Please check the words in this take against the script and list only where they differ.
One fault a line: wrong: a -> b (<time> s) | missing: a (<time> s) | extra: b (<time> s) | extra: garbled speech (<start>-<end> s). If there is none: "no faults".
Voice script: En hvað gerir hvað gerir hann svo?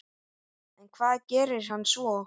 missing: hvað gerir (1.7 s)